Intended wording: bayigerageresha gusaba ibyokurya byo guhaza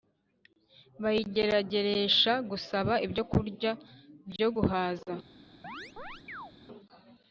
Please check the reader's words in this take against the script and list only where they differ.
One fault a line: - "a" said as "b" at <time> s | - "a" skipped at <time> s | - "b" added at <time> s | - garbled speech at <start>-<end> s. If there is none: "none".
none